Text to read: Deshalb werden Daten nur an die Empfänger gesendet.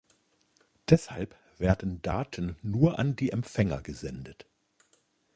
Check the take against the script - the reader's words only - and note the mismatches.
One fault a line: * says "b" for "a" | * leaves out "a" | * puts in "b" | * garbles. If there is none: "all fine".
all fine